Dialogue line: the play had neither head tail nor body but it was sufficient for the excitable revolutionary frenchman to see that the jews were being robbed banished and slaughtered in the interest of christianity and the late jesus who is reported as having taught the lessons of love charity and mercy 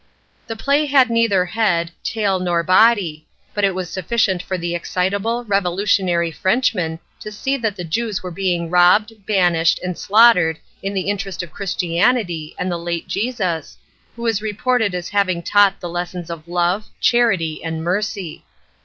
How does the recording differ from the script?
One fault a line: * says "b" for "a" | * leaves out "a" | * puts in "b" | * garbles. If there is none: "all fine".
all fine